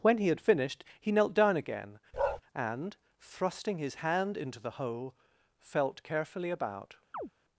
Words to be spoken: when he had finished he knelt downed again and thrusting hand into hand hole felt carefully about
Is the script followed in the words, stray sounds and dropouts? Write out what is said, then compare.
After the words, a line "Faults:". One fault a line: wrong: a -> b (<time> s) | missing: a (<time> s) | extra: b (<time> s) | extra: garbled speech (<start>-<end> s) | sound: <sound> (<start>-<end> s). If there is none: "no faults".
when he had finished he knelt down again and thrusting his hand into the hole felt carefully about
Faults:
wrong: downed -> down (1.4 s)
sound: bark (2.1-2.4 s)
extra: his (3.8 s)
wrong: hand -> the (4.6 s)
sound: chirp (7.1-7.3 s)